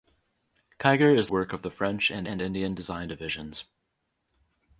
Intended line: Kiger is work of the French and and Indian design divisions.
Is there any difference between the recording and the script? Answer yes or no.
no